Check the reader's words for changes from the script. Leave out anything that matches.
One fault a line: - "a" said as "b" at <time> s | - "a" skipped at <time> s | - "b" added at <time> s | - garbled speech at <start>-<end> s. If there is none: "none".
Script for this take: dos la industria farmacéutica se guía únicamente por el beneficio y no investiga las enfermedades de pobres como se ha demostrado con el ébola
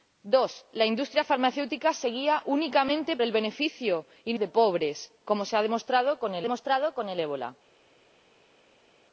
- "por" skipped at 3.2 s
- "investiga las enfermedades" skipped at 4.4 s
- "demostrado con el" added at 6.4 s